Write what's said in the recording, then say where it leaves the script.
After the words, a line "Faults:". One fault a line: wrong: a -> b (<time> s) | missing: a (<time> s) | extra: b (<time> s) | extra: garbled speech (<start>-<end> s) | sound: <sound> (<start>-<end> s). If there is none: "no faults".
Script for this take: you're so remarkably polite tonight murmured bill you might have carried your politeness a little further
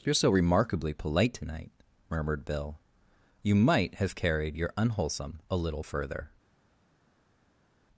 you're so remarkably polite tonight murmured bill you might have carried your unwholesome a little further
Faults:
wrong: politeness -> unwholesome (4.8 s)